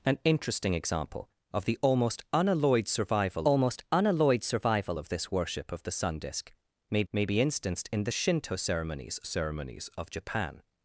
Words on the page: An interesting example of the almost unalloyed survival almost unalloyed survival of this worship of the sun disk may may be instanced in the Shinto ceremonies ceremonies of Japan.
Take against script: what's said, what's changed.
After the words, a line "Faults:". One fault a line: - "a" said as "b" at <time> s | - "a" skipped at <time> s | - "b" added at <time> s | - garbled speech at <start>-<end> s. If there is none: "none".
An interesting example of the almost unalloyed survival almost unalloyed survival of this worship of the sun disk may may be instanced in the Shinto ceremonies ceremonies of Japan.
Faults:
none